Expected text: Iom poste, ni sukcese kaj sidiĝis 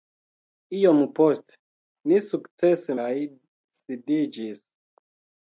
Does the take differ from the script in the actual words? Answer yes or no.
no